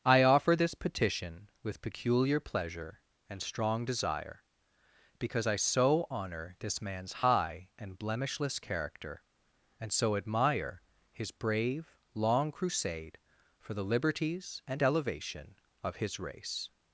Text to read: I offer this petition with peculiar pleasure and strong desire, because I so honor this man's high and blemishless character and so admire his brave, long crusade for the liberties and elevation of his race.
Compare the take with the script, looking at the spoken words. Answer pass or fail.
pass